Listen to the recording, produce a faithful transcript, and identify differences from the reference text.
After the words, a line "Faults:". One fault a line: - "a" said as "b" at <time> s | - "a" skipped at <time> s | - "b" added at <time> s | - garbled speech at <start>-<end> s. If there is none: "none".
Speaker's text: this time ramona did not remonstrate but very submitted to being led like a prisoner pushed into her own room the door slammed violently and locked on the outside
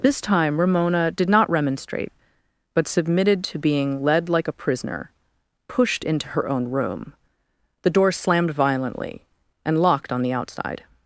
this time ramona did not remonstrate but submitted to being led like a prisoner pushed into her own room the door slammed violently and locked on the outside
Faults:
- "very" skipped at 2.9 s